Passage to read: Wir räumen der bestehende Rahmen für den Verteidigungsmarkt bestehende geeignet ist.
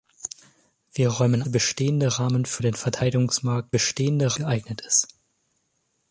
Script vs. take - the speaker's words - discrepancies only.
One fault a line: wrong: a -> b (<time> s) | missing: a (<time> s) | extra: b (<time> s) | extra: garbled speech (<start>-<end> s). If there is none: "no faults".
no faults